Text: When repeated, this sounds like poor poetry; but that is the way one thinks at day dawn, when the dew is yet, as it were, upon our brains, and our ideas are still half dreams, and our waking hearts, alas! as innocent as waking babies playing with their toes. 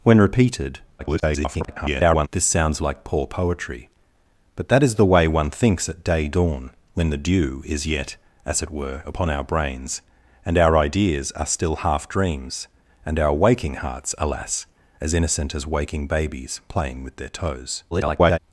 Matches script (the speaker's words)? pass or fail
fail